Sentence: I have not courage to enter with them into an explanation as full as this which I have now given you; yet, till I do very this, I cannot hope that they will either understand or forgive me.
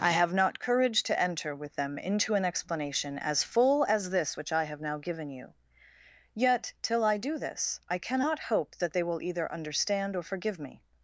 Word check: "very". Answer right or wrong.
wrong